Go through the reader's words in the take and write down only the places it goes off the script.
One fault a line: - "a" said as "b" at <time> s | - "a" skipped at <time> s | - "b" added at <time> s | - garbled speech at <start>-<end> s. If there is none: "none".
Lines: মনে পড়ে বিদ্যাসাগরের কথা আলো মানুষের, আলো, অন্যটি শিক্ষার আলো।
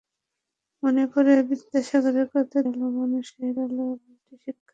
none